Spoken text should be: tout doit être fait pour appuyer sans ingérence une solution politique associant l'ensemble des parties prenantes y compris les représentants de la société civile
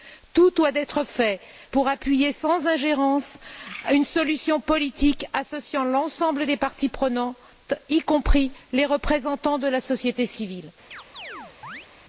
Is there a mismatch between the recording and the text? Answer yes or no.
no